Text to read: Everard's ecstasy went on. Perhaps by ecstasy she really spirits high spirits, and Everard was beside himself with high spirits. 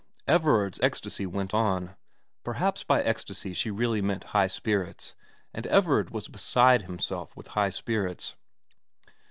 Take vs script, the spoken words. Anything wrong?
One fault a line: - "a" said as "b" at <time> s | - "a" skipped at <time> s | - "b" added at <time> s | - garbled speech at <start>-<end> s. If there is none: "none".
- "spirits" said as "meant" at 4.0 s